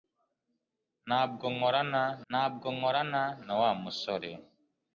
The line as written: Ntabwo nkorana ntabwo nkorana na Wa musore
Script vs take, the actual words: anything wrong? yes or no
no